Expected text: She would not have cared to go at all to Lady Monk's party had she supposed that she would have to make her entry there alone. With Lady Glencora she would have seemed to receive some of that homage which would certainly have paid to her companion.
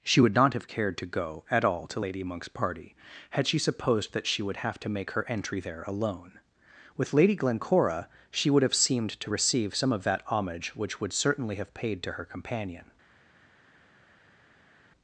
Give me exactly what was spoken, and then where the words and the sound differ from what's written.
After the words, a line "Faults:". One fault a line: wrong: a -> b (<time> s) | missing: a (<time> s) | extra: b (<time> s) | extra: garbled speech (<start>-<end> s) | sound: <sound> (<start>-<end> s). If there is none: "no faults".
She would not have cared to go at all to Lady Monk's party had she supposed that she would have to make her entry there alone. With Lady Glencora she would have seemed to receive some of that homage which would certainly have paid to her companion.
Faults:
no faults